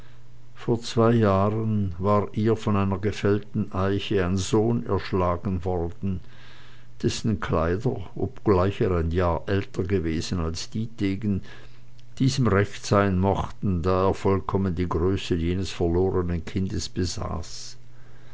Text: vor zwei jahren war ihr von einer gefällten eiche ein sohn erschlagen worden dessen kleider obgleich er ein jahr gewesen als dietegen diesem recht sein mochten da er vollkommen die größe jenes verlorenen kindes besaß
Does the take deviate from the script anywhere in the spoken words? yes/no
yes